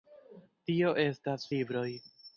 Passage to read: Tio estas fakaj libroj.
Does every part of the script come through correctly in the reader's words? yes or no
no